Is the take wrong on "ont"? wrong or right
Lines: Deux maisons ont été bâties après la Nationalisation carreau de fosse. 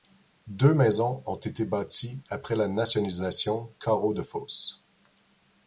right